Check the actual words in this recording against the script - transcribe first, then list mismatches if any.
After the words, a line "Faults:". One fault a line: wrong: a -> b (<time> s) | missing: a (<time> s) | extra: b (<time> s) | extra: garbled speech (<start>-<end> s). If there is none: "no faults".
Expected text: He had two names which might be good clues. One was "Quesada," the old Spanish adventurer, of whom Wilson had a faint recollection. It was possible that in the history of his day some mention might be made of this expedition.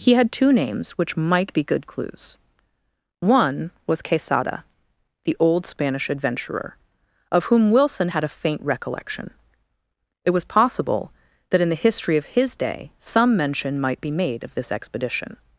He had two names which might be good clues. One was "Quesada," the old Spanish adventurer, of whom Wilson had a faint recollection. It was possible that in the history of his day some mention might be made of this expedition.
Faults:
no faults